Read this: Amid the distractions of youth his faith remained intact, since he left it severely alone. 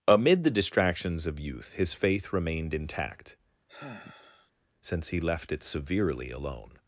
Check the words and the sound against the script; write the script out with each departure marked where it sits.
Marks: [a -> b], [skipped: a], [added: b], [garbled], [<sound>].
Amid the distractions of youth his faith remained intact, [sigh] since he left it severely alone.